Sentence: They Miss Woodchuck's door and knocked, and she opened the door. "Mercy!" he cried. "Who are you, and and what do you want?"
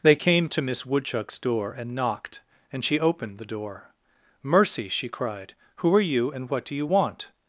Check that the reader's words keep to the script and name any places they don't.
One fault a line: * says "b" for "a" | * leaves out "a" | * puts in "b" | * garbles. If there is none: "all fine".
* puts in "came to"
* says "she" for "he"
* leaves out "and"